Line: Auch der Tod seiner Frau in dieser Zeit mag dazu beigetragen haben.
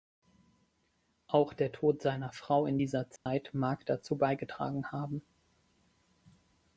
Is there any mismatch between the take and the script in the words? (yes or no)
no